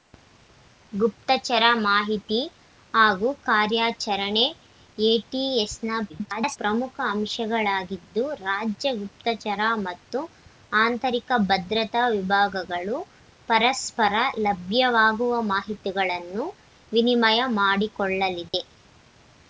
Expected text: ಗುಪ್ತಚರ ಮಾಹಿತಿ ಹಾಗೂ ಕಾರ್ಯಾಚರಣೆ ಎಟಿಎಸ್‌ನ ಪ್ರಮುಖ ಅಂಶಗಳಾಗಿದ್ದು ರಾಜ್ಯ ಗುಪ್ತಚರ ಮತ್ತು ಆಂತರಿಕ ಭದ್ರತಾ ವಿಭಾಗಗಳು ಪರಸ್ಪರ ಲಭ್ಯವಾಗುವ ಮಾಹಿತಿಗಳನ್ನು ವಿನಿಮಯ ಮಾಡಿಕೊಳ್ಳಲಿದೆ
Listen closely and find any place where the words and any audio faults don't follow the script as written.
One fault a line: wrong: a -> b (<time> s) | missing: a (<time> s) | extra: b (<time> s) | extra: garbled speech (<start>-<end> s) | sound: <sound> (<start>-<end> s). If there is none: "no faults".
extra: garbled speech (6.1-6.6 s)
sound: dropout (18.5-18.5 s)